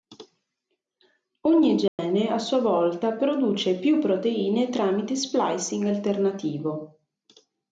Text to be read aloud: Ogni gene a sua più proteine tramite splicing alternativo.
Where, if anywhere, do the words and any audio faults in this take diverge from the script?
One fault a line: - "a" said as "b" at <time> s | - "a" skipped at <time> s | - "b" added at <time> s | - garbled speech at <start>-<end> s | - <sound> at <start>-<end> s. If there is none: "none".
- dropout at 1.9-2.0 s
- "volta produce" added at 2.6 s